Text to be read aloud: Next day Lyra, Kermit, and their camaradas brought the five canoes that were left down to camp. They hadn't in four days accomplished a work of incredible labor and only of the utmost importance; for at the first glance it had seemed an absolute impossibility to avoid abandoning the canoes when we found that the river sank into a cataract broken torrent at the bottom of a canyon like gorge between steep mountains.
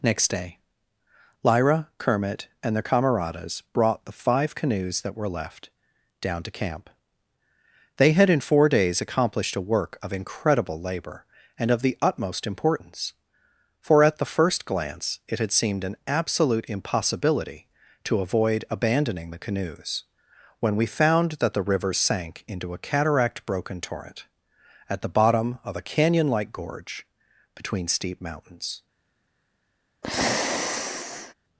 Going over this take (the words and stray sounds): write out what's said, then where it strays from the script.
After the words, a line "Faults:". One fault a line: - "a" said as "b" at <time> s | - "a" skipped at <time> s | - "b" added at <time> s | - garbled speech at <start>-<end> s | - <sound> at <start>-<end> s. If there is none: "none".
Next day Lyra, Kermit, and their camaradas brought the five canoes that were left down to camp. They had in four days accomplished a work of incredible labor and of the utmost importance; for at the first glance it had seemed an absolute impossibility to avoid abandoning the canoes when we found that the river sank into a cataract broken torrent at the bottom of a canyon like gorge between steep mountains.
Faults:
- "hadn't" said as "had" at 8.1 s
- "only" skipped at 11.7 s
- sigh at 30.0-31.3 s